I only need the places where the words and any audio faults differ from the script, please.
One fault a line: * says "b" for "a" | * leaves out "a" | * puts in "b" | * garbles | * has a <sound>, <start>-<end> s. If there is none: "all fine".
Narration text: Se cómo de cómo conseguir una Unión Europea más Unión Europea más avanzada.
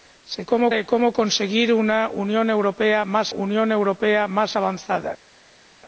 all fine